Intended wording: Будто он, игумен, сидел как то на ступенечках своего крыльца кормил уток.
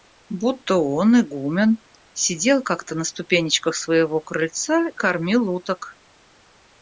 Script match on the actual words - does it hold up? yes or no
yes